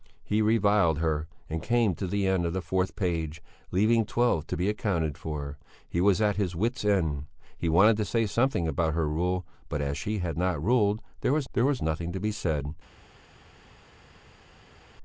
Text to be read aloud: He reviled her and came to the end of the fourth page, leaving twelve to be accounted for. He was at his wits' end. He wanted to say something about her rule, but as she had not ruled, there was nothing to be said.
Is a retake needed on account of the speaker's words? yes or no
yes